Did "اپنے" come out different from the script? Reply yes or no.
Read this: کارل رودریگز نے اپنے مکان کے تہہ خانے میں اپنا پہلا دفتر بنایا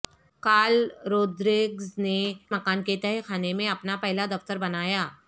yes